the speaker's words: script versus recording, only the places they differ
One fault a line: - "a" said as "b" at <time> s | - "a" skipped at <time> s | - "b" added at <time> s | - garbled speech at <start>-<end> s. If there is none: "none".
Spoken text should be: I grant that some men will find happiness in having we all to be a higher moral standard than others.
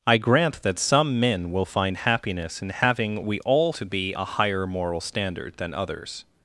none